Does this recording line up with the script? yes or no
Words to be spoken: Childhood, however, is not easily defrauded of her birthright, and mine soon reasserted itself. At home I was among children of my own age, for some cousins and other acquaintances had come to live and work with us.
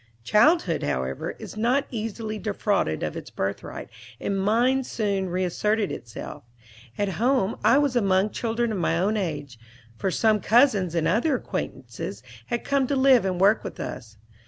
no